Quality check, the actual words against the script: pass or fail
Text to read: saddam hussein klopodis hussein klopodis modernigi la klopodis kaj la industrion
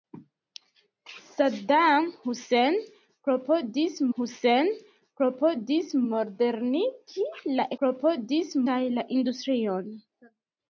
pass